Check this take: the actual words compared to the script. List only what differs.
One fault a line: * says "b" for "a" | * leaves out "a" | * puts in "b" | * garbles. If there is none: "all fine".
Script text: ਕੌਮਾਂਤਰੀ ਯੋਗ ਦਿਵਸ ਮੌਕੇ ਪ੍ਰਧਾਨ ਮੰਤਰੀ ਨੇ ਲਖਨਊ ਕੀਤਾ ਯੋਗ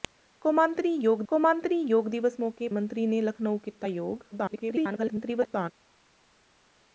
* puts in "ਕੌਮਾਂਤਰੀ ਯੋਗ"
* leaves out "ਪ੍ਰਧਾਨ"
* garbles